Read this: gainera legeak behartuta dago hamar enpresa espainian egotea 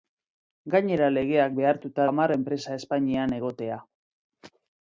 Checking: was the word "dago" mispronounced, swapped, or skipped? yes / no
yes